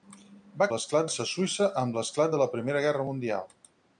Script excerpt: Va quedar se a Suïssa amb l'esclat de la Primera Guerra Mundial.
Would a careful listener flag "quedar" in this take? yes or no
yes